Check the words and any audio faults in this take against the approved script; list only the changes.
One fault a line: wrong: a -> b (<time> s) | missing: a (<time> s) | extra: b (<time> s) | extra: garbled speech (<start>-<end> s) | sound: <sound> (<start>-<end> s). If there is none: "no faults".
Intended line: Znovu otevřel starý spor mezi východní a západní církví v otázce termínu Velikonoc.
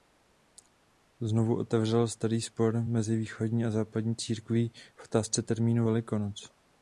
no faults